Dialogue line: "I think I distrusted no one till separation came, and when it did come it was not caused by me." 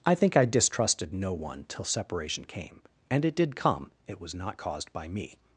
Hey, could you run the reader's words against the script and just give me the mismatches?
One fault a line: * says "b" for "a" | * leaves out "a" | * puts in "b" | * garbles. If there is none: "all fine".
* leaves out "when"